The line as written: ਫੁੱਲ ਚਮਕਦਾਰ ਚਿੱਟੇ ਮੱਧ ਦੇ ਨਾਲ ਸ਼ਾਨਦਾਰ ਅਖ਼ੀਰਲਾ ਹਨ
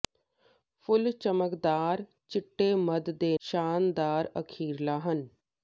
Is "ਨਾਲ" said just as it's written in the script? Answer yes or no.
no